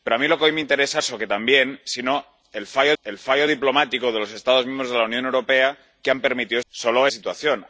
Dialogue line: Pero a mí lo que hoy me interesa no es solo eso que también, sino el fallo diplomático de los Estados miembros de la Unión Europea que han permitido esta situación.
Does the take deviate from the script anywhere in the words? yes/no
yes